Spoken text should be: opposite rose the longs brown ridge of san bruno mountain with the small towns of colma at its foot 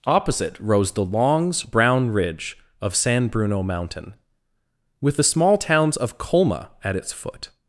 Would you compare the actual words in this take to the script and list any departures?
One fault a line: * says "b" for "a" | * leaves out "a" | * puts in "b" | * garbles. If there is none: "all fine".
all fine